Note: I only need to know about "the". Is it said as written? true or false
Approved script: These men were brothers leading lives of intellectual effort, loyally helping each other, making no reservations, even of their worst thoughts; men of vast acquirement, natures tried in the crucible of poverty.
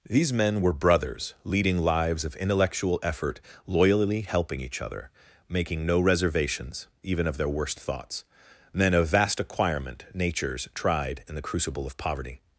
true